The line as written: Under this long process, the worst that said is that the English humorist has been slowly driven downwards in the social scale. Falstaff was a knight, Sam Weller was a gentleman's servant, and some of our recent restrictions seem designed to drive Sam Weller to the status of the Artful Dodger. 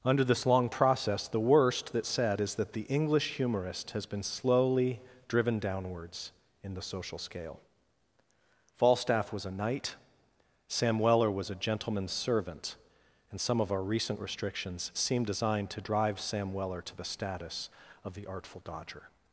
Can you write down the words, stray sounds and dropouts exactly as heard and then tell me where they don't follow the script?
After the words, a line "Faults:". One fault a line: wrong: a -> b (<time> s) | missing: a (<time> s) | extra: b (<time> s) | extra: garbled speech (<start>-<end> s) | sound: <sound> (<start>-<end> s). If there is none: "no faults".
Under this long process, the worst that said is that the English humorist has been slowly driven downwards in the social scale. Falstaff was a knight, Sam Weller was a gentleman's servant, and some of our recent restrictions seem designed to drive Sam Weller to the status of the Artful Dodger.
Faults:
no faults